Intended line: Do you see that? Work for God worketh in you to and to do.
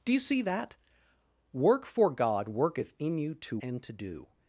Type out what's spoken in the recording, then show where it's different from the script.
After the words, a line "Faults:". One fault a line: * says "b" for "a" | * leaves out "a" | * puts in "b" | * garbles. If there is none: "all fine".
Do you see that? Work for God worketh in you to and to do.
Faults:
all fine